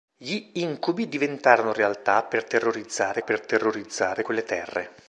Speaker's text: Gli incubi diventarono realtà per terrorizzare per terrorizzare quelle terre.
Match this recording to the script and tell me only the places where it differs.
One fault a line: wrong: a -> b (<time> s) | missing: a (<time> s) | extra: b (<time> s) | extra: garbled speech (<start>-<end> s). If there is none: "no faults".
no faults